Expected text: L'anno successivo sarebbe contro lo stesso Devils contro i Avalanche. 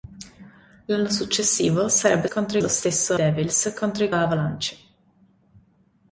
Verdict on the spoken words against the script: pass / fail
pass